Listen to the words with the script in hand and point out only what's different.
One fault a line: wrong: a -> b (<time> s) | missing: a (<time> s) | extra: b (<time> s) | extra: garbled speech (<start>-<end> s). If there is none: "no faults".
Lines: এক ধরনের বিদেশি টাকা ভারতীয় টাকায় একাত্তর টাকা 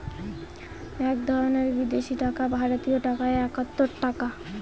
no faults